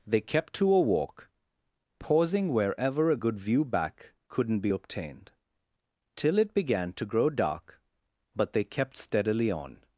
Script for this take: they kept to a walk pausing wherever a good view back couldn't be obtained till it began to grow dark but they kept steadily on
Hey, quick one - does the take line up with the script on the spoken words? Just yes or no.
yes